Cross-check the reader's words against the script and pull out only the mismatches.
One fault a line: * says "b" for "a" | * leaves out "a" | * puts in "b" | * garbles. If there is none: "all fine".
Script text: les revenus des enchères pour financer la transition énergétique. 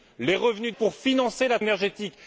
* leaves out "des enchères"
* leaves out "transition"